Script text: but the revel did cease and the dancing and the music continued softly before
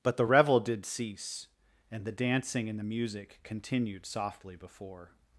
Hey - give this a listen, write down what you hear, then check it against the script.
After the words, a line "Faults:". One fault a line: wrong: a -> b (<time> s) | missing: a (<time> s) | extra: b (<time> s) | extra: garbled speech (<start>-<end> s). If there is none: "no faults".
but the revel did cease and the dancing and the music continued softly before
Faults:
no faults